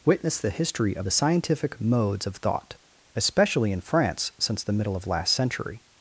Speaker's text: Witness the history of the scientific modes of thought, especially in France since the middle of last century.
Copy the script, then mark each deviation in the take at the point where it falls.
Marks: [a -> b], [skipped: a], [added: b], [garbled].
Witness the history of the scientific modes of thought, especially in France since the middle of last century.